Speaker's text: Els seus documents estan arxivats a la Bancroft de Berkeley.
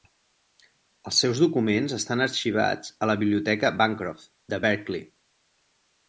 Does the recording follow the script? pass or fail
fail